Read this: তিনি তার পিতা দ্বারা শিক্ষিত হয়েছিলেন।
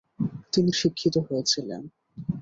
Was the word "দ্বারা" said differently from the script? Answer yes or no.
yes